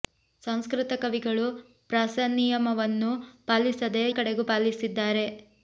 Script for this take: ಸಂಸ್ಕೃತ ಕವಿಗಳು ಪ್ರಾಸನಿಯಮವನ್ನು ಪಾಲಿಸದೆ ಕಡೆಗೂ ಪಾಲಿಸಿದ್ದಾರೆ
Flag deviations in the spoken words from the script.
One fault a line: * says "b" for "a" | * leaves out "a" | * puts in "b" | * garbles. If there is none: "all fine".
all fine